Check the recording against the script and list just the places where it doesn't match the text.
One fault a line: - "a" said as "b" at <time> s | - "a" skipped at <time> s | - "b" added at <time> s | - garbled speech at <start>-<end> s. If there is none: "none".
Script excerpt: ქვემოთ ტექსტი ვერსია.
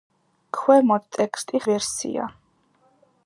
none